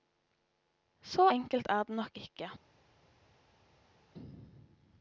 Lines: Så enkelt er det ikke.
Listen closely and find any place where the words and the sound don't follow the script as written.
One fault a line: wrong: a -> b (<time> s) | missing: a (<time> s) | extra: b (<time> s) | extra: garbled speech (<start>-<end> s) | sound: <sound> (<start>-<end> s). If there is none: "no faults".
extra: nok (2.0 s)